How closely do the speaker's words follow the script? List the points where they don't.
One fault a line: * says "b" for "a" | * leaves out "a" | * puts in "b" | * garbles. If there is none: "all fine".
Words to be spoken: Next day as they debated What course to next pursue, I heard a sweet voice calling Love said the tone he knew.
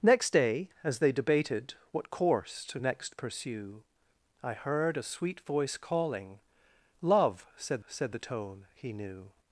* puts in "said"